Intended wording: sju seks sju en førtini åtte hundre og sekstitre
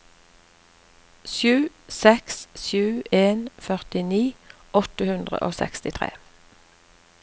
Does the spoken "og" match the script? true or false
true